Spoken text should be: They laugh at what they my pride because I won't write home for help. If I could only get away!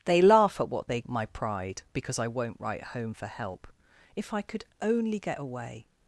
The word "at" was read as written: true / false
true